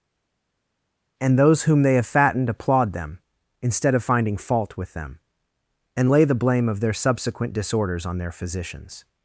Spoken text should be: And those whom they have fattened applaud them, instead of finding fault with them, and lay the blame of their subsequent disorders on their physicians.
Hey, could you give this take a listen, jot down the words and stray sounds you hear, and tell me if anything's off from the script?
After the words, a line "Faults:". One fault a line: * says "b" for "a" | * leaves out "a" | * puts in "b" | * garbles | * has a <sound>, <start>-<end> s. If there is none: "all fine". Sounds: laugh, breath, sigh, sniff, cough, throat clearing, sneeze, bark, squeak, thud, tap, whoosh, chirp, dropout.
And those whom they have fattened applaud them, instead of finding fault with them, and lay the blame of their subsequent disorders on their physicians.
Faults:
all fine